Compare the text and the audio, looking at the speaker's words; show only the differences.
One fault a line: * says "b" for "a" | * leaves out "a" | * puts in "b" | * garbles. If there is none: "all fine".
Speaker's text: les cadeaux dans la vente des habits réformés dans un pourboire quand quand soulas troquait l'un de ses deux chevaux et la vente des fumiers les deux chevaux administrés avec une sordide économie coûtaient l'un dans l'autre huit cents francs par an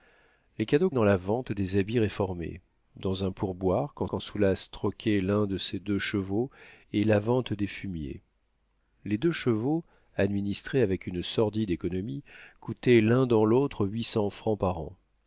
all fine